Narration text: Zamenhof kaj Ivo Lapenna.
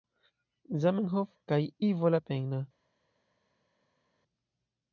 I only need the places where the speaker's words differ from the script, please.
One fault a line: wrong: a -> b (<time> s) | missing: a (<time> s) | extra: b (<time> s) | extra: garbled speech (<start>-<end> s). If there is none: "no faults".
no faults